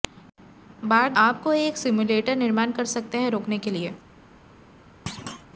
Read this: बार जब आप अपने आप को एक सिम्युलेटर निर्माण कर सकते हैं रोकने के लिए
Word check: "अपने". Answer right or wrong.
wrong